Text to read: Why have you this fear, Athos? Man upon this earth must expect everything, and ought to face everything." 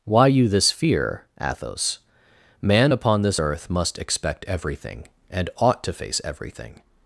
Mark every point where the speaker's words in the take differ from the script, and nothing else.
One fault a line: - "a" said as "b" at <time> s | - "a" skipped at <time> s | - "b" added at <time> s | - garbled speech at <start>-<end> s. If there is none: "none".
- "have" skipped at 0.3 s